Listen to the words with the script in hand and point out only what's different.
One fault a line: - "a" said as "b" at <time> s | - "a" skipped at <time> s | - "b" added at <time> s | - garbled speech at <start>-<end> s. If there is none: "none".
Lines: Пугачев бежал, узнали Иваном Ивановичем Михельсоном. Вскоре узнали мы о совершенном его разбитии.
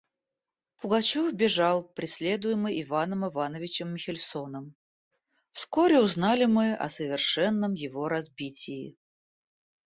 - "узнали" said as "преследуемый" at 1.9 s